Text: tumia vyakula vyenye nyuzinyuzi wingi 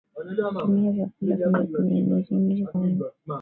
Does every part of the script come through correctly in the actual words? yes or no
yes